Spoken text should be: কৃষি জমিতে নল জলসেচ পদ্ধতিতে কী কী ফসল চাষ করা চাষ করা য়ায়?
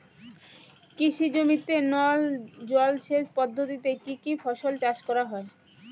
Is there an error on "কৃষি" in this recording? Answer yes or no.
no